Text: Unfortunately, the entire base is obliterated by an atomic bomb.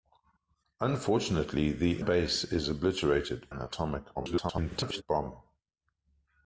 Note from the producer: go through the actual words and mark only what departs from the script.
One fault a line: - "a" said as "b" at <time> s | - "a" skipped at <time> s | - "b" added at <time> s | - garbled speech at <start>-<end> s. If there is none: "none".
- "entire" skipped at 2.0 s
- "by" skipped at 3.5 s
- garbled speech at 4.2-5.0 s